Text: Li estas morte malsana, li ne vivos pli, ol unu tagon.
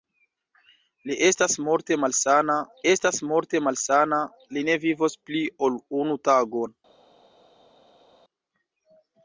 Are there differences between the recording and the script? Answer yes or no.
yes